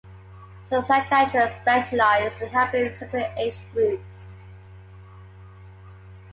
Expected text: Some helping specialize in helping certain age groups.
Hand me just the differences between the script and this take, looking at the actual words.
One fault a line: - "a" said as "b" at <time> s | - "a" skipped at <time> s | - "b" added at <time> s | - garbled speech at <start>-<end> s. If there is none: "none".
- "helping" said as "psychiatrists" at 0.9 s